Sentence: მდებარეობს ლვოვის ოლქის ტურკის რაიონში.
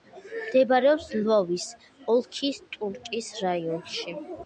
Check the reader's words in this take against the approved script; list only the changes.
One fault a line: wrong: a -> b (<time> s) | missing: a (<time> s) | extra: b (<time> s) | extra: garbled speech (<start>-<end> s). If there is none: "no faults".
no faults